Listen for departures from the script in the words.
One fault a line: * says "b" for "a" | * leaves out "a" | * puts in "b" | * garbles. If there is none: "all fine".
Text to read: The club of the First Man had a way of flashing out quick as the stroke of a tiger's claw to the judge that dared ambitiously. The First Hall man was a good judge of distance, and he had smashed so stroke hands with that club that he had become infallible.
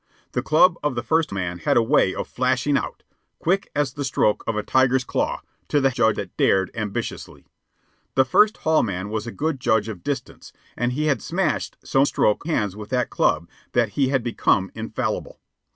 all fine